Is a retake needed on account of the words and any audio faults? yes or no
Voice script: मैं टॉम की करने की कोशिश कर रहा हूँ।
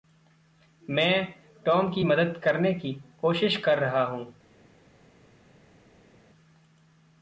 yes